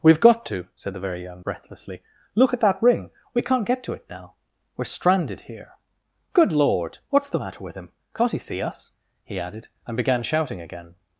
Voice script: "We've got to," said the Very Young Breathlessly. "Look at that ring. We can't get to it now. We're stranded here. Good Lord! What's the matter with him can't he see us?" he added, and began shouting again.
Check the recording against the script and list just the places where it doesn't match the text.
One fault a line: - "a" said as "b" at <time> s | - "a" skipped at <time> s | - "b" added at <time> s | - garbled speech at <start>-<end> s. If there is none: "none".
none